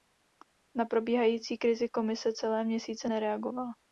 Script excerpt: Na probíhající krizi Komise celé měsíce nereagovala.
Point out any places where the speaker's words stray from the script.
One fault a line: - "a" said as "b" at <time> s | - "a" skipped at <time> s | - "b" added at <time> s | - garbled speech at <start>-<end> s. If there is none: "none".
none